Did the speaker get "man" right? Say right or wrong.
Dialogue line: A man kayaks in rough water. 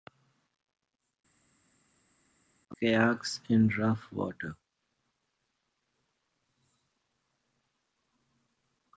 wrong